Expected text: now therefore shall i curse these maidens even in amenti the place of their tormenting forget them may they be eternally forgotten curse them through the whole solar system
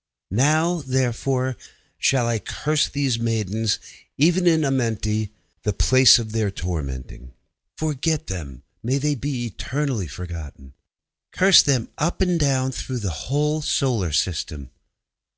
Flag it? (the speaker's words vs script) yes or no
yes